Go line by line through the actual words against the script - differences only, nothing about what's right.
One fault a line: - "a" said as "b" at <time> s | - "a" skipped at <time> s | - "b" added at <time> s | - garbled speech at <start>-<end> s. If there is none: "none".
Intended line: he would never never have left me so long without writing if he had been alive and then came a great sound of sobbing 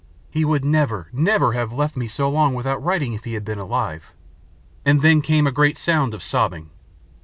none